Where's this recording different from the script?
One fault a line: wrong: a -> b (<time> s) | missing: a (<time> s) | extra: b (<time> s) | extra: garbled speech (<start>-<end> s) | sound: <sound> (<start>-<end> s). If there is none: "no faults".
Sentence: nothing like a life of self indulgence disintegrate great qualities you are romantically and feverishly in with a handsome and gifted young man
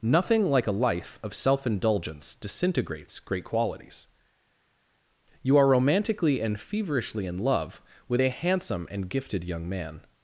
wrong: disintegrate -> disintegrates (2.3 s)
extra: love (7.4 s)